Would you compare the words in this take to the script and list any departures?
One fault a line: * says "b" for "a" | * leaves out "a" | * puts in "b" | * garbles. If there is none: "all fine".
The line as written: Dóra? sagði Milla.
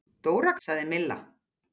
all fine